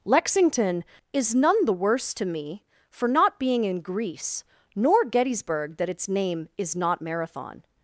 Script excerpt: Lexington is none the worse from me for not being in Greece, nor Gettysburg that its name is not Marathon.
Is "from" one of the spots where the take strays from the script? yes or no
yes